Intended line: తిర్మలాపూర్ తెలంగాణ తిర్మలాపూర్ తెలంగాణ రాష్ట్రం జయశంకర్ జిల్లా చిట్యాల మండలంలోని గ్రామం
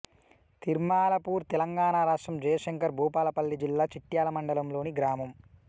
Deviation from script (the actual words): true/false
true